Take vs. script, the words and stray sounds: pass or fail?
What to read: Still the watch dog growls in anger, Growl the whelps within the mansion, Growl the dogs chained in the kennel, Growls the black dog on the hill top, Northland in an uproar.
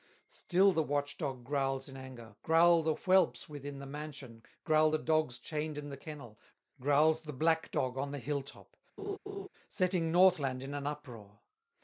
fail